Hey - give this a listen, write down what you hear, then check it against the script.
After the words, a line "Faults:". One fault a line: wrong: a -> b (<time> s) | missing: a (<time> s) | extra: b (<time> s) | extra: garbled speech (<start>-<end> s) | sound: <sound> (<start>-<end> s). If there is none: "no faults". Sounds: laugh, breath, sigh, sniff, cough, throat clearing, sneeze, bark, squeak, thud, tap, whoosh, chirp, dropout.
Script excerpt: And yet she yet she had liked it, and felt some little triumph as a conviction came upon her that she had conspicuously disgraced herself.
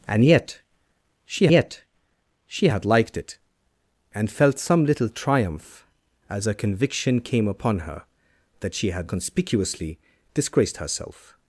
And yet she yet she had liked it, and felt some little triumph as a conviction came upon her that she had conspicuously disgraced herself.
Faults:
no faults